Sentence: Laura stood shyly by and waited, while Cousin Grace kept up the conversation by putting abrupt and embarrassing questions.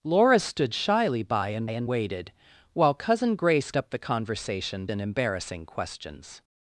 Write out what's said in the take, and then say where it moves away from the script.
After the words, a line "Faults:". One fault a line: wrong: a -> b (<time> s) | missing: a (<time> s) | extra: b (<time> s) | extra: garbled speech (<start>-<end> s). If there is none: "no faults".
Laura stood shyly by and and waited, while Cousin Grace up the conversation and embarrassing questions.
Faults:
extra: and (1.7 s)
missing: kept (3.7 s)
missing: by putting abrupt (4.9 s)